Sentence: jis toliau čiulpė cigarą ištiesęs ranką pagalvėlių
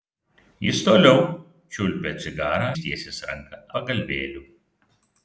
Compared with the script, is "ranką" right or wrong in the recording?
right